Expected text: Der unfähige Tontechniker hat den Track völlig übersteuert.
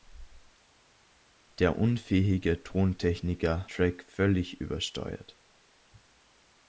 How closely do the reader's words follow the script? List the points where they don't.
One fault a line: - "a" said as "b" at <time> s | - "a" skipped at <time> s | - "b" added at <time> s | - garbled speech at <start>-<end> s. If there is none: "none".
- "hat den" skipped at 3.7 s